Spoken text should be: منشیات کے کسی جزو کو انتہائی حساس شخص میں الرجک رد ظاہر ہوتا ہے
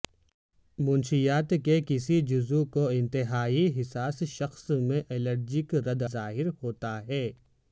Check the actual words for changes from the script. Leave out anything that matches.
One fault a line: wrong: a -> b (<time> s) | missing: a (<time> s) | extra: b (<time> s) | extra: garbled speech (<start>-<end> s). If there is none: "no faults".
no faults